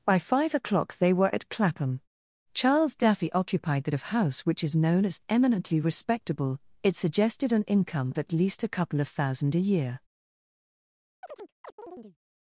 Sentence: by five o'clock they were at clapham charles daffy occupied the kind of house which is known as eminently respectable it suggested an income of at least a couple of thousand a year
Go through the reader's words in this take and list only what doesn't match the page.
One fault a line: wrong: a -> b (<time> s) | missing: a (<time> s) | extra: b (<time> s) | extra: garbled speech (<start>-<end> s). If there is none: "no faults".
missing: kind (3.9 s)
missing: of (8.1 s)